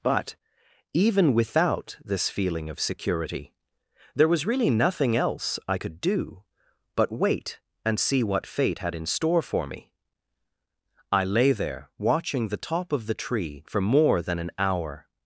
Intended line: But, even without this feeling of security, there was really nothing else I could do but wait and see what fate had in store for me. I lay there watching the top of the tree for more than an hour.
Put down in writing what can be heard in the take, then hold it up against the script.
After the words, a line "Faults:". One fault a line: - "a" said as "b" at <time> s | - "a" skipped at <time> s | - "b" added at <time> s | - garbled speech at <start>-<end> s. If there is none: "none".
But, even without this feeling of security, there was really nothing else I could do but wait and see what fate had in store for me. I lay there watching the top of the tree for more than an hour.
Faults:
none